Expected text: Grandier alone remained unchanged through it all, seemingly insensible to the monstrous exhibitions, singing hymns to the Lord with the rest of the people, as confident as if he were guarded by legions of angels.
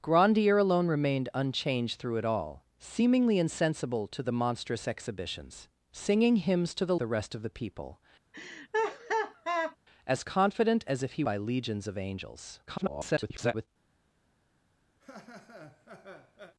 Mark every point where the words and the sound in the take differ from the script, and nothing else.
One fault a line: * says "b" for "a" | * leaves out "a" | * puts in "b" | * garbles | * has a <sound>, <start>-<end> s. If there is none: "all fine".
* leaves out "Lord with"
* has a laugh, 8.3-9.8 s
* leaves out "were guarded"
* garbles
* has a laugh, 15.0-16.5 s